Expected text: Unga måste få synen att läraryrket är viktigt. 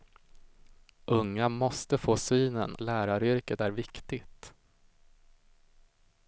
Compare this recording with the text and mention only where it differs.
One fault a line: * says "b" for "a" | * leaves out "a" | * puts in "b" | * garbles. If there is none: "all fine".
* leaves out "att"